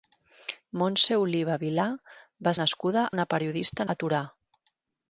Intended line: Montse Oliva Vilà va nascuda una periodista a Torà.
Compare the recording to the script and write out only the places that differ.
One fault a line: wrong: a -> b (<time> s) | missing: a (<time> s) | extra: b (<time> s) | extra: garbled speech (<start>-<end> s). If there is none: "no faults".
no faults